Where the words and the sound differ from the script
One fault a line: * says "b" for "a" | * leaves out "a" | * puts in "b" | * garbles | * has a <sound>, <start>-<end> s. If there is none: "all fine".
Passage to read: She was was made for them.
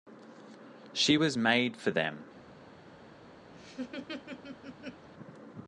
* leaves out "was"
* has a laugh, 3.5-5.1 s